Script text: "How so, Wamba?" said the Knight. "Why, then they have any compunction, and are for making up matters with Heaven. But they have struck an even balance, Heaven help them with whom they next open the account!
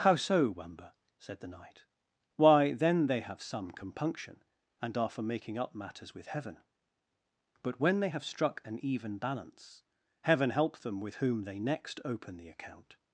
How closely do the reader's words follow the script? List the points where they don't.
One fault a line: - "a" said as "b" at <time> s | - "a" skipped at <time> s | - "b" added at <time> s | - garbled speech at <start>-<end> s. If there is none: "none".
- "any" said as "some" at 3.4 s
- "when" added at 7.8 s